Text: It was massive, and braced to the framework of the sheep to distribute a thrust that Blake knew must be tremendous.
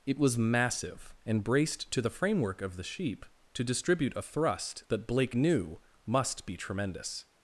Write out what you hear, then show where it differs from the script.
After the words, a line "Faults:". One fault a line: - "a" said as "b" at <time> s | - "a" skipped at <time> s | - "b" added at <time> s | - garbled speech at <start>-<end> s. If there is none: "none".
It was massive, and braced to the framework of the sheep to distribute a thrust that Blake knew must be tremendous.
Faults:
none